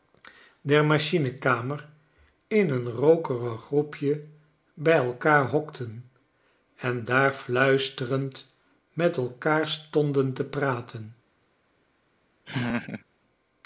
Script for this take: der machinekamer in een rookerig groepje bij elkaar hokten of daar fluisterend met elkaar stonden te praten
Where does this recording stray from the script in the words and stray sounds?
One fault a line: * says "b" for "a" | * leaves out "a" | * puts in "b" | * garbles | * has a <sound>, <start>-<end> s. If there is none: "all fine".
* says "en" for "of"
* has a laugh, 12.5-13.0 s